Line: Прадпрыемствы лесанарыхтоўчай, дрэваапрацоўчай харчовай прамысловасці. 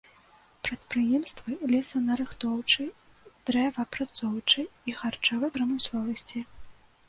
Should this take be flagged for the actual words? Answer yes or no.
yes